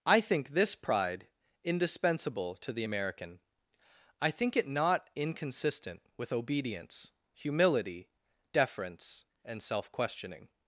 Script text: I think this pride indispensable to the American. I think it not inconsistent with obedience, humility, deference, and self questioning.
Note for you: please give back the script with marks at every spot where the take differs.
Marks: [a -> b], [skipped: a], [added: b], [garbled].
I think this pride indispensable to the American. I think it not inconsistent with obedience, humility, deference, and self questioning.